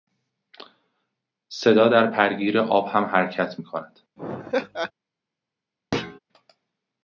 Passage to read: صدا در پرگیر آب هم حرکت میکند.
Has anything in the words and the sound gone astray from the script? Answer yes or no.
yes